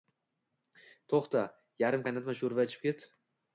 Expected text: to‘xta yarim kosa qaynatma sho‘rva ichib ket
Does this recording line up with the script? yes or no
no